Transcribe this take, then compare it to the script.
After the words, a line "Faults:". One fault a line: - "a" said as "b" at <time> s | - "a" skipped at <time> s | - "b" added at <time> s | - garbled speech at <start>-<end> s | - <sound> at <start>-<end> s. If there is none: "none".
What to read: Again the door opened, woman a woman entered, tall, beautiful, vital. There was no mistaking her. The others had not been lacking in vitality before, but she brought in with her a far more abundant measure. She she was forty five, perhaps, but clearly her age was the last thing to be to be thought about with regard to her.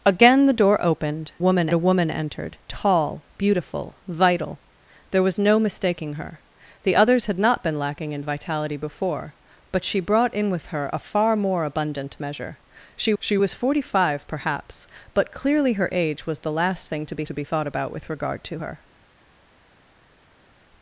Again the door opened, woman a woman entered, tall, beautiful, vital. There was no mistaking her. The others had not been lacking in vitality before, but she brought in with her a far more abundant measure. She she was forty five, perhaps, but clearly her age was the last thing to be to be thought about with regard to her.
Faults:
none